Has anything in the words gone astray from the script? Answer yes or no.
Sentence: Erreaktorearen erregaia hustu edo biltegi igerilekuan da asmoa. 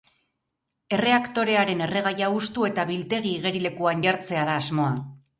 yes